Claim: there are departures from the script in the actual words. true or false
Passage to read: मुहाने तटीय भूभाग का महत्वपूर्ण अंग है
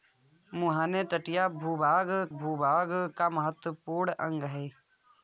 true